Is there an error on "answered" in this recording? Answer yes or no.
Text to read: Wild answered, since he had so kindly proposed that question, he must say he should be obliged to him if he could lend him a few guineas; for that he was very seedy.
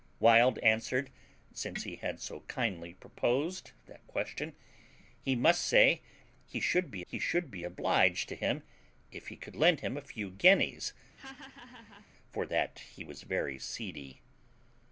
no